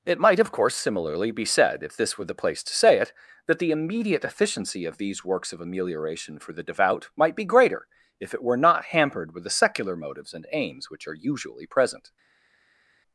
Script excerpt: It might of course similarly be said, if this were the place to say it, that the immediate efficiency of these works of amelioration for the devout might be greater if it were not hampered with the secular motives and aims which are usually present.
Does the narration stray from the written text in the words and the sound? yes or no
no